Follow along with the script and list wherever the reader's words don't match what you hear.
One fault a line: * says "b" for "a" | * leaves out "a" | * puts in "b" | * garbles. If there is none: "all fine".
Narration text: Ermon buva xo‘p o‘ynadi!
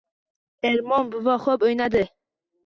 all fine